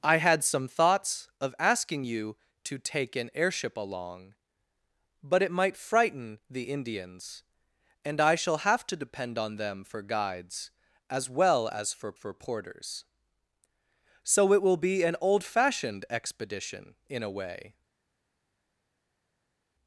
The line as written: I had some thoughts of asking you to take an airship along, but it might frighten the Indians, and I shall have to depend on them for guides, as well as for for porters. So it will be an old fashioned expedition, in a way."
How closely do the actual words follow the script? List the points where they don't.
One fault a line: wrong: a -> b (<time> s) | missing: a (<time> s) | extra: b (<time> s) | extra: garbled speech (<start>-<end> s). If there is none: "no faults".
no faults